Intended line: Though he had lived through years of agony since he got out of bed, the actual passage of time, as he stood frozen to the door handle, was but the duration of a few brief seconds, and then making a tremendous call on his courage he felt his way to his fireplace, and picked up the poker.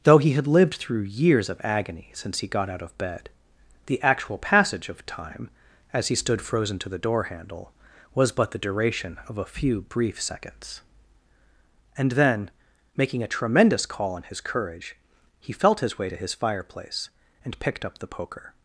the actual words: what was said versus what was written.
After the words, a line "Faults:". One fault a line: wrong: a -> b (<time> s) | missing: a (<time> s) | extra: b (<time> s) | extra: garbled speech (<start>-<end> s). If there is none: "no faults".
Though he had lived through years of agony since he got out of bed, the actual passage of time, as he stood frozen to the door handle, was but the duration of a few brief seconds, and then making a tremendous call on his courage he felt his way to his fireplace, and picked up the poker.
Faults:
no faults